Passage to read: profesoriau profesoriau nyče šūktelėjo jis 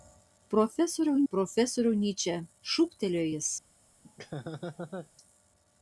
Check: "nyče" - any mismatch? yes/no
no